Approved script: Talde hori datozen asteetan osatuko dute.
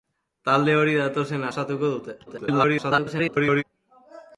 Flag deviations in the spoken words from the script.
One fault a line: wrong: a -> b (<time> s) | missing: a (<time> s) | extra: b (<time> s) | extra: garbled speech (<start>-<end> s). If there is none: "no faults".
missing: asteetan (1.4 s)
extra: garbled speech (2.3-3.6 s)